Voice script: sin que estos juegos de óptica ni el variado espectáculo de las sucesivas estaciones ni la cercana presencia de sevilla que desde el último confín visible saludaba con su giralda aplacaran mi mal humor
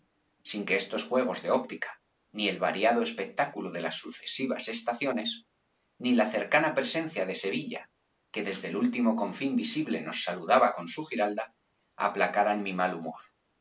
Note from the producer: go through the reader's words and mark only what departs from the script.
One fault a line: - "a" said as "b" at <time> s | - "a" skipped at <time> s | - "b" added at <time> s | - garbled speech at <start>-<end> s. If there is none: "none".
- "nos" added at 10.0 s